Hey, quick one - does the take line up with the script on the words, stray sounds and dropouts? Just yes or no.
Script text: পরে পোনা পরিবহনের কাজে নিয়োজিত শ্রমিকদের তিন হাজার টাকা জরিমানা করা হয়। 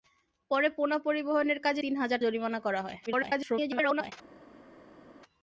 no